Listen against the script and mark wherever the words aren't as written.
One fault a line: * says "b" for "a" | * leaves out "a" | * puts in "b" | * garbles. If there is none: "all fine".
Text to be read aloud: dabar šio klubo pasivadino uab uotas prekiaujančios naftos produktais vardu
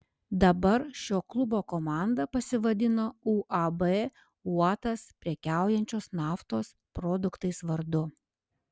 * puts in "komanda"